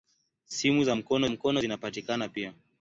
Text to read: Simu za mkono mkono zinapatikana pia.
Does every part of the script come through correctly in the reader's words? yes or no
yes